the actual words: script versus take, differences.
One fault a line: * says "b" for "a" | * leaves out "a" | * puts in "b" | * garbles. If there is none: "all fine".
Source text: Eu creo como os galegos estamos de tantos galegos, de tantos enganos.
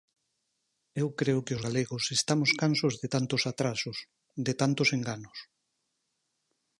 * says "que" for "como"
* puts in "cansos"
* says "atrasos" for "galegos"